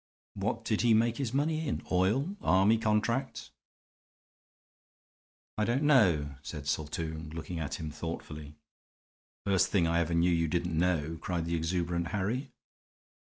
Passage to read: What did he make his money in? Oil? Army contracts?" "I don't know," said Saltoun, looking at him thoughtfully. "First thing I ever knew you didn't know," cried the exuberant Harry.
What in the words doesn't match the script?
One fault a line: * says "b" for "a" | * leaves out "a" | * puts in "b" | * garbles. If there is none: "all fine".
all fine